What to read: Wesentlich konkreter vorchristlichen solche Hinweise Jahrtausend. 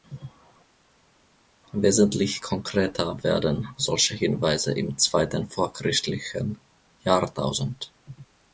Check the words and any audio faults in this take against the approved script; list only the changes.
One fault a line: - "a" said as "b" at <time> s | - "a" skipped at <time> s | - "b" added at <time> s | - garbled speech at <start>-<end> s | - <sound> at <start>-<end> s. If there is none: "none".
- "vorchristlichen" said as "werden" at 3.2 s
- "im zweiten vorchristlichen" added at 4.7 s